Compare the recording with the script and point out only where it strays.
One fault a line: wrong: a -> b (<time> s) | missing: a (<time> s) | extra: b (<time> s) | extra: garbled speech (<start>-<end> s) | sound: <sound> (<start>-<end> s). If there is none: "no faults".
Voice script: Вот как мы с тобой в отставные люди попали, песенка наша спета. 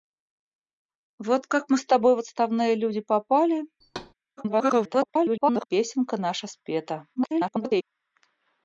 sound: thud (3.8-4.1 s)
extra: garbled speech (4.4-5.7 s)
extra: garbled speech (7.1-7.8 s)